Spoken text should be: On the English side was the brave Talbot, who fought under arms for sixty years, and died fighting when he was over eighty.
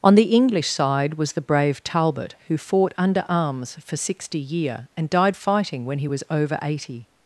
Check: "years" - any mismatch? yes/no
yes